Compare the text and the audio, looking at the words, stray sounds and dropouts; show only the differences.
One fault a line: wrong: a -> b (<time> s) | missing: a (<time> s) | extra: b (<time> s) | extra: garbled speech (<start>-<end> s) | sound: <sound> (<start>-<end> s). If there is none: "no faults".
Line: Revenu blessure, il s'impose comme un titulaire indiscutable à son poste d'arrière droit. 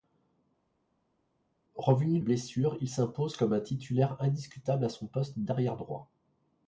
no faults